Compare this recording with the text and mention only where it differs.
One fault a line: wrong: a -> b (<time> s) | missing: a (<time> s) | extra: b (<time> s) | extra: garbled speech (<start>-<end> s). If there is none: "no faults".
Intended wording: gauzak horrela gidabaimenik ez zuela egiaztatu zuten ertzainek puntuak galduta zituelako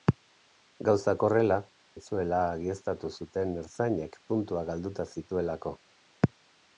missing: gidabaimenik (1.6 s)